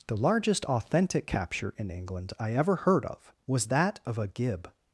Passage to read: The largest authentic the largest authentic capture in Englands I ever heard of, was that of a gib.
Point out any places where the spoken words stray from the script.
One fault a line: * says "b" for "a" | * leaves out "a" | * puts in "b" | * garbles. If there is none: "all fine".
* leaves out "the largest authentic"
* says "England" for "Englands"